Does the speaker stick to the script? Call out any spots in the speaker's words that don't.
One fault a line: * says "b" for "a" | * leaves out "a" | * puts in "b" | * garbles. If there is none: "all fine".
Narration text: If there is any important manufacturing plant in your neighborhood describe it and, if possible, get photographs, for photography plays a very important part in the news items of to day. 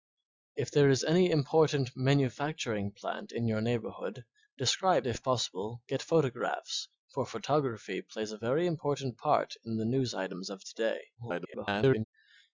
* leaves out "it and"
* garbles